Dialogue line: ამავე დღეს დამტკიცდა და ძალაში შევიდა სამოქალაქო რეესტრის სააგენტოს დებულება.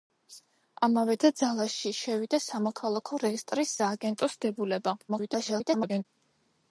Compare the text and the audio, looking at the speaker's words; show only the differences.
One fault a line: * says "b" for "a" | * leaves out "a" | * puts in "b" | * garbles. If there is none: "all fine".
* leaves out "დღეს დამტკიცდა"
* garbles